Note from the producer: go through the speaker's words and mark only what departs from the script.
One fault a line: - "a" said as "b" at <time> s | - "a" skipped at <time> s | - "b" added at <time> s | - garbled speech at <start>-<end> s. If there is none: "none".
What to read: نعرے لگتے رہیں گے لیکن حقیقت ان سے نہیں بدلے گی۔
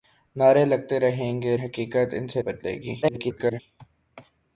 - "لیکن" skipped at 1.6 s
- "نہیں" skipped at 2.4 s
- garbled speech at 3.0-3.6 s